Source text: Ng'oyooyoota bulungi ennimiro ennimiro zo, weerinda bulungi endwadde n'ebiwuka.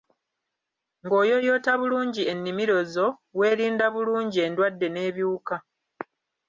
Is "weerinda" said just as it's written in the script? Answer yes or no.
yes